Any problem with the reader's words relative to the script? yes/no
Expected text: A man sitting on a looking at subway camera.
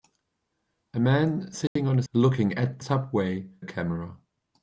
no